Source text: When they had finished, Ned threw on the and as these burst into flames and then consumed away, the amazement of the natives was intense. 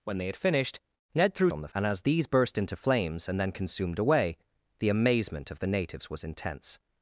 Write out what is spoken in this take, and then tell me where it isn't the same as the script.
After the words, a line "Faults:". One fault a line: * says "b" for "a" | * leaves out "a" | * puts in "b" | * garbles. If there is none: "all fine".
When they had finished, Ned threw on the and as these burst into flames and then consumed away, the amazement of the natives was intense.
Faults:
all fine